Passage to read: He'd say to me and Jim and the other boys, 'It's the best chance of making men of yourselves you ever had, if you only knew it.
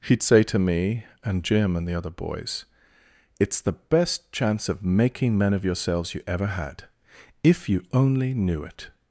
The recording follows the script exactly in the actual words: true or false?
true